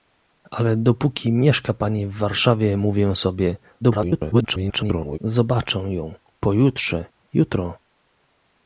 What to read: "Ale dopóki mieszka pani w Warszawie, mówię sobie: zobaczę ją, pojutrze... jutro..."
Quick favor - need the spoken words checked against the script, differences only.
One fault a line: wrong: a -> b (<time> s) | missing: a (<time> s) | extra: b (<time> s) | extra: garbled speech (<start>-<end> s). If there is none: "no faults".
extra: garbled speech (3.8-5.2 s)